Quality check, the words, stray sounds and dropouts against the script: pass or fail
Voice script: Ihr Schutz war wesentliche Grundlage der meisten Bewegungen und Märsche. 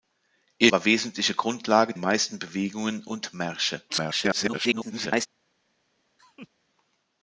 fail